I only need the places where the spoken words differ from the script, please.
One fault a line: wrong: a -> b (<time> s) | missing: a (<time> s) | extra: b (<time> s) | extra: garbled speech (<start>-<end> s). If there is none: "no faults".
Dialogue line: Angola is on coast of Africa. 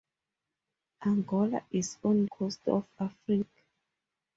no faults